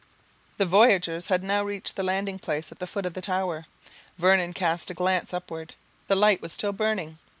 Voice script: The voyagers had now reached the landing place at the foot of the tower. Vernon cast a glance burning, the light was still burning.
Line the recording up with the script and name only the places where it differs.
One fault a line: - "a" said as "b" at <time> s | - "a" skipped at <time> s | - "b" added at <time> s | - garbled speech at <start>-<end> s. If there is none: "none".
- "burning" said as "upward" at 5.3 s